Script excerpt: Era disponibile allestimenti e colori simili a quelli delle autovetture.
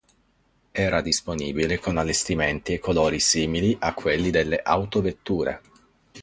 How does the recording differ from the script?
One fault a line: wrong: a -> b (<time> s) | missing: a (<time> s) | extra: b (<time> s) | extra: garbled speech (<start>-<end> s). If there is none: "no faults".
extra: con (1.8 s)